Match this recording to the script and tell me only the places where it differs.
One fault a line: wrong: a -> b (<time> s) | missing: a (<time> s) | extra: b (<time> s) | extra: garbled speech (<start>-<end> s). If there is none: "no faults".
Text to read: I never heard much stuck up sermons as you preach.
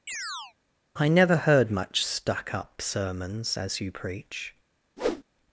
no faults